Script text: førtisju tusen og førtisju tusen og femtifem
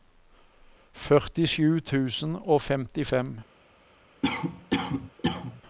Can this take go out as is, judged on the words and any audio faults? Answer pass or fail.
fail